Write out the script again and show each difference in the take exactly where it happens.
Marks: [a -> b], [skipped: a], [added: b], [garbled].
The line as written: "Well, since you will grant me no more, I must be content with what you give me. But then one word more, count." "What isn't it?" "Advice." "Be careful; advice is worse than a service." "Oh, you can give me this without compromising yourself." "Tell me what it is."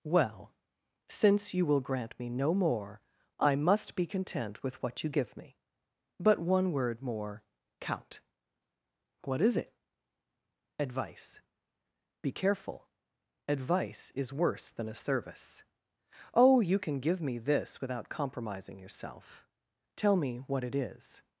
"Well, since you will grant me no more, I must be content with what you give me. But [skipped: then] one word more, count." "What [isn't -> is] it?" "Advice." "Be careful; advice is worse than a service." "Oh, you can give me this without compromising yourself." "Tell me what it is."